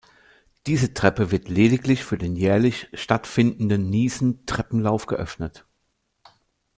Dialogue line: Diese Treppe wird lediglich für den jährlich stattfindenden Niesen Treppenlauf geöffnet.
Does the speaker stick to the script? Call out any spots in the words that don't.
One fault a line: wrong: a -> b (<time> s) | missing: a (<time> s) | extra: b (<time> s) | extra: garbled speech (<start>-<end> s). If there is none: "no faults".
no faults